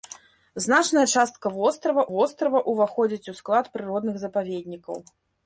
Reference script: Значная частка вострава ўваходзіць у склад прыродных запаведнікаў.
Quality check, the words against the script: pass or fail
fail